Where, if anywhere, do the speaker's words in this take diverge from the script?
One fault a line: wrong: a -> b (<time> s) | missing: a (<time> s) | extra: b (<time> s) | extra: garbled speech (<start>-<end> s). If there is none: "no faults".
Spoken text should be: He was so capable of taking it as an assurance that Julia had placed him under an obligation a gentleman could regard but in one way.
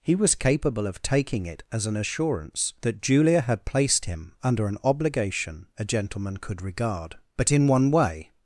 missing: so (0.3 s)